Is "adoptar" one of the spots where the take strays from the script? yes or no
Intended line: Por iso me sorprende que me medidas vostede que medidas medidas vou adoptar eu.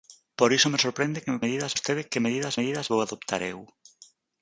no